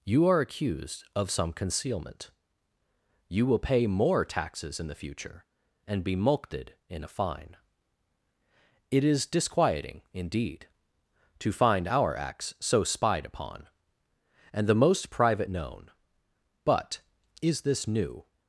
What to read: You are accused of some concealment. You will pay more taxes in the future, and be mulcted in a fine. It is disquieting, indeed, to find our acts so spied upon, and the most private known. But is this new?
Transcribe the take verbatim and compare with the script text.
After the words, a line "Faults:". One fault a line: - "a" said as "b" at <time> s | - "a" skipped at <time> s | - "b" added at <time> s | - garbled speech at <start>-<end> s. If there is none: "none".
You are accused of some concealment. You will pay more taxes in the future, and be mulcted in a fine. It is disquieting, indeed, to find our acts so spied upon, and the most private known. But is this new?
Faults:
none